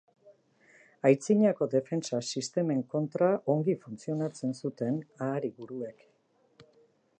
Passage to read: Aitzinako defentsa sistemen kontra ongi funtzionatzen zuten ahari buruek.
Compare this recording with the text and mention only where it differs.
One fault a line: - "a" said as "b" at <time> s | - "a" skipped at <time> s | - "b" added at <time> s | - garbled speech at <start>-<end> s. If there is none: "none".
none